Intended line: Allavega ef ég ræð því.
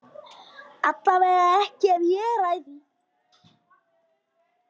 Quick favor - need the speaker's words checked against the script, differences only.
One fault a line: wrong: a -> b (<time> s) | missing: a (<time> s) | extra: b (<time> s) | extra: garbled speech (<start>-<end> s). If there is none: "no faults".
extra: ekki (1.6 s)